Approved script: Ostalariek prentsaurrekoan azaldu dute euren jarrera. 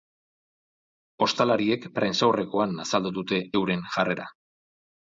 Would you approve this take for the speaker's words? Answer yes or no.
yes